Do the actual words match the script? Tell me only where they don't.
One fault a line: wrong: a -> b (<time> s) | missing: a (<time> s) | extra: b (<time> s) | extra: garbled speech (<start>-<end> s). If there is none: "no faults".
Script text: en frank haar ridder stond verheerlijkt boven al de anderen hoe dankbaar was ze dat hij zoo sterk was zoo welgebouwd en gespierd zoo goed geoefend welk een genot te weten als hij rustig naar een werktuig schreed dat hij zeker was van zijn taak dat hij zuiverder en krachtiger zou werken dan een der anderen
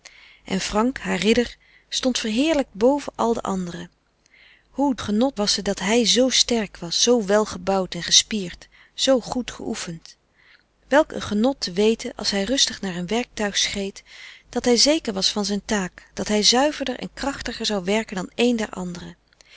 wrong: dankbaar -> genot (5.0 s)